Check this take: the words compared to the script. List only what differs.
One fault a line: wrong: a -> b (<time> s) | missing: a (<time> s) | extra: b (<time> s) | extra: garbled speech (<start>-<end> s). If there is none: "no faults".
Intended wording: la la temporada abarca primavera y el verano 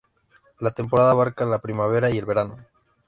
missing: la (0.7 s)
extra: la (1.4 s)